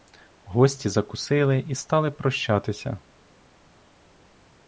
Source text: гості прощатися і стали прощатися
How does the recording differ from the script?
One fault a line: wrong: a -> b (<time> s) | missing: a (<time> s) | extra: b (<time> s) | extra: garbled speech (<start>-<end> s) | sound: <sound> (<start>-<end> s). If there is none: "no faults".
wrong: прощатися -> закусили (0.9 s)